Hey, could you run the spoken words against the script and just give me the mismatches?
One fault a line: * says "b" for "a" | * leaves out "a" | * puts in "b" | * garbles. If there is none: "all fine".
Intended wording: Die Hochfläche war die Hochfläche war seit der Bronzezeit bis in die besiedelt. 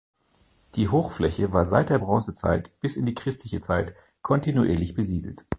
* leaves out "die Hochfläche war"
* puts in "christliche Zeit kontinuierlich"